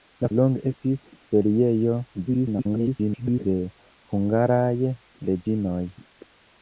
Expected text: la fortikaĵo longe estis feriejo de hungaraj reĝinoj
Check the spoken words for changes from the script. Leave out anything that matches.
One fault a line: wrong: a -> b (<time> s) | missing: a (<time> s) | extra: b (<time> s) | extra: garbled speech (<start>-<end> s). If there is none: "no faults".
missing: fortikaĵo (0.3 s)
extra: garbled speech (2.3-3.5 s)